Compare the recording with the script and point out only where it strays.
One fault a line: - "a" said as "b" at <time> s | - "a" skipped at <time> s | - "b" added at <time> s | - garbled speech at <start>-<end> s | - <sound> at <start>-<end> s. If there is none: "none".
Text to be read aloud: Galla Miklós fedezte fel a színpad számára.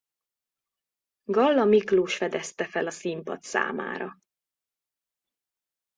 none